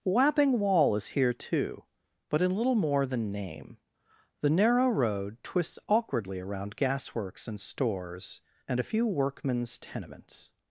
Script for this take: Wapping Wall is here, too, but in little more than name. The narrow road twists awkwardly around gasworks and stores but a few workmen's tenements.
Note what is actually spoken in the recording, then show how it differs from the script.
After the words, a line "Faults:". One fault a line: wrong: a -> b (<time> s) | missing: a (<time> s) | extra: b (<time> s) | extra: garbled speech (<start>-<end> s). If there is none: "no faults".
Wapping Wall is here, too, but in little more than name. The narrow road twists awkwardly around gasworks and stores and a few workmen's tenements.
Faults:
wrong: but -> and (8.7 s)